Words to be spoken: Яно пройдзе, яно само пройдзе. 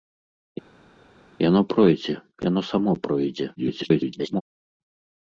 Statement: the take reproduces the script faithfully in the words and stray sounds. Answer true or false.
false